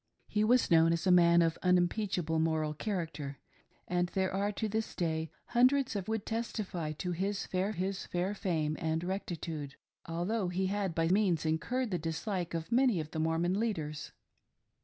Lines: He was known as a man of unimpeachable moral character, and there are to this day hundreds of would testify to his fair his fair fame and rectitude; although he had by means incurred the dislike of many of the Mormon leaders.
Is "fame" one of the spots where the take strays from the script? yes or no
no